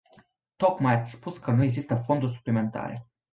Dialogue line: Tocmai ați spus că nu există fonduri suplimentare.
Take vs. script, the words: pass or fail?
pass